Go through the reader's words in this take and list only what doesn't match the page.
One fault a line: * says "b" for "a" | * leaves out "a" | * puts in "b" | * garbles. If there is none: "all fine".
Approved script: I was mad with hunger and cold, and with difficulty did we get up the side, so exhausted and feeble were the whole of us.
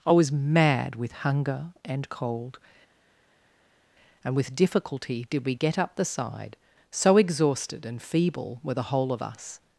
all fine